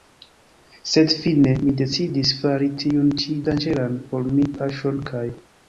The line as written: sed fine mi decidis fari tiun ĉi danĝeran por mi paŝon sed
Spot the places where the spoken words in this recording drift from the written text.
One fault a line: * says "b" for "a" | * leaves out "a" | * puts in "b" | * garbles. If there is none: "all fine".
* says "kaj" for "sed"